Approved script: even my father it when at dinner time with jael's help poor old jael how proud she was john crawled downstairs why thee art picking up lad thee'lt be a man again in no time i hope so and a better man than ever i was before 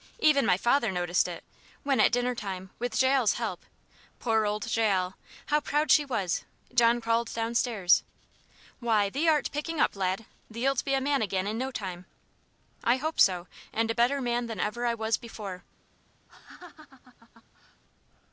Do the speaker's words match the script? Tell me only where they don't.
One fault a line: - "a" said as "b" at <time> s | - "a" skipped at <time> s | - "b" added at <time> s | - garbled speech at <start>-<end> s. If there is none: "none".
- "noticed" added at 0.9 s